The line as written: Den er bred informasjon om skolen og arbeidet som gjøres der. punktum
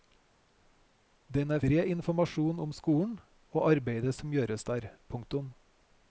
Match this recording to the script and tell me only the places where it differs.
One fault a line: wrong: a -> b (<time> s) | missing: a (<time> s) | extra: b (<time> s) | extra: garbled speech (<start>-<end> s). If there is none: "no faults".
no faults